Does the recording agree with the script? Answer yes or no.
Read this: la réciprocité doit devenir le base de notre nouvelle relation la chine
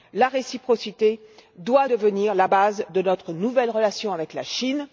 no